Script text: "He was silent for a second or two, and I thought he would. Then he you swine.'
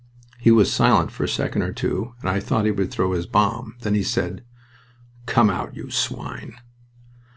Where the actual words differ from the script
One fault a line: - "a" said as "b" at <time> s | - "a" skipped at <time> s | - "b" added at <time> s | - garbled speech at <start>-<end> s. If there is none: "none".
- "throw his bomb" added at 2.9 s
- "said Come out" added at 4.0 s